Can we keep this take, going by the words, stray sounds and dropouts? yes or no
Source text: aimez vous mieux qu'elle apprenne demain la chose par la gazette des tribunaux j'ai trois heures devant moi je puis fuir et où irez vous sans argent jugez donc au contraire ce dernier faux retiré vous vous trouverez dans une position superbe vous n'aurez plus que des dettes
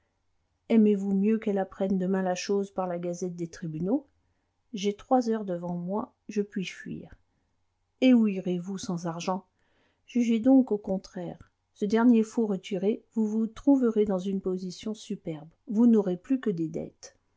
yes